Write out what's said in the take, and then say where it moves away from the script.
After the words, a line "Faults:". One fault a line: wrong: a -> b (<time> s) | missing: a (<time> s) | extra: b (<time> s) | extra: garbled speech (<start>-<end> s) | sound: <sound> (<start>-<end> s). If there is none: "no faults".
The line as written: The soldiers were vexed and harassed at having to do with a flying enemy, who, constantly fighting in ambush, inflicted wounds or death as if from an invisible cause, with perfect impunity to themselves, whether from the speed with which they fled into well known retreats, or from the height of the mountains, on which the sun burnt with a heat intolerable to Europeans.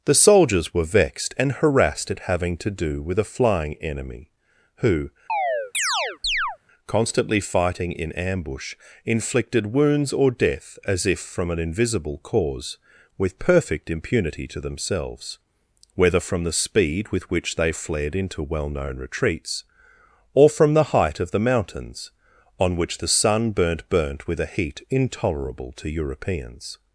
The soldiers were vexed and harassed at having to do with a flying enemy, who, constantly fighting in ambush, inflicted wounds or death as if from an invisible cause, with perfect impunity to themselves, whether from the speed with which they fled into well known retreats, or from the height of the mountains, on which the sun burnt burnt with a heat intolerable to Europeans.
Faults:
sound: chirp (5.3-6.6 s)
extra: burnt (23.9 s)